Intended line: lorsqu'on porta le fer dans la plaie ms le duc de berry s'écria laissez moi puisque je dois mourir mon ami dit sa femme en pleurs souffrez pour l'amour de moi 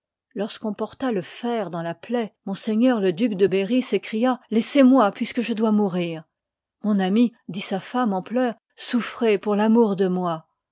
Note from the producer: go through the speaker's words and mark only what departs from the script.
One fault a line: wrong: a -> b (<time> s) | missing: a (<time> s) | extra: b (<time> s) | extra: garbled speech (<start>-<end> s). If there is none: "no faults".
no faults